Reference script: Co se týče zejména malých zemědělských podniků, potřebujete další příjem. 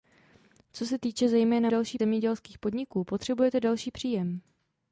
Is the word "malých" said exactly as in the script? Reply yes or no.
no